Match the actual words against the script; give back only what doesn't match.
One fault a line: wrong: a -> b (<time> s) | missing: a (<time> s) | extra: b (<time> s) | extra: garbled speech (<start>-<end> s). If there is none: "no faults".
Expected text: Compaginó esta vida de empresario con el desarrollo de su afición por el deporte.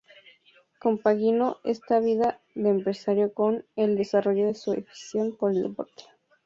no faults